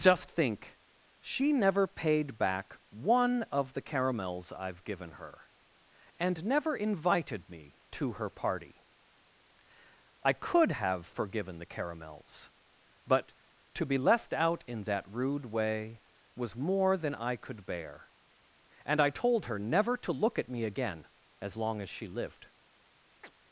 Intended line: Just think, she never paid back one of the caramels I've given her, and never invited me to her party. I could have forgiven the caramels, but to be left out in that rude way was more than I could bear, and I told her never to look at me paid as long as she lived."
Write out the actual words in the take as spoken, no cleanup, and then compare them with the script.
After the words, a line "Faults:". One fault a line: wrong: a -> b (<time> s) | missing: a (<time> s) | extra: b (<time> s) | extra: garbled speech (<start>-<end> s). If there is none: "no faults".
Just think, she never paid back one of the caramels I've given her, and never invited me to her party. I could have forgiven the caramels, but to be left out in that rude way was more than I could bear, and I told her never to look at me again as long as she lived."
Faults:
wrong: paid -> again (20.6 s)